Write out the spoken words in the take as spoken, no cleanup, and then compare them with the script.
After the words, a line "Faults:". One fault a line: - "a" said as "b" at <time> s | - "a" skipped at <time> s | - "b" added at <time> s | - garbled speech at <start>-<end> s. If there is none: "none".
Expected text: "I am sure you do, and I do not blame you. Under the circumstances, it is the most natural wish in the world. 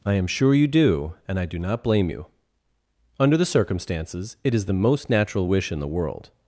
"I am sure you do, and I do not blame you. Under the circumstances, it is the most natural wish in the world.
Faults:
none